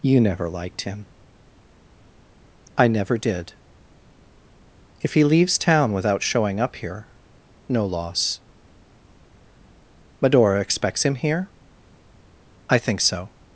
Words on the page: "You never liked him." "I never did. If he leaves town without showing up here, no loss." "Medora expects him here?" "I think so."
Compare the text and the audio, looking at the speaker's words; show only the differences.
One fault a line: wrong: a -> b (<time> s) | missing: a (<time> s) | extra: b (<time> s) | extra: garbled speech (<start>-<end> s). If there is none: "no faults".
no faults